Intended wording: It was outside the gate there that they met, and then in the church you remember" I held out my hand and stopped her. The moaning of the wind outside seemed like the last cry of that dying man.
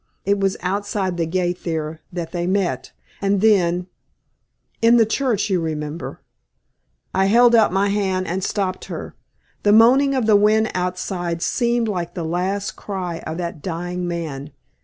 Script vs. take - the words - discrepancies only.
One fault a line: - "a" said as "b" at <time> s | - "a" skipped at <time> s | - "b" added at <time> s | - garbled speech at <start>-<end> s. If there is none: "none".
none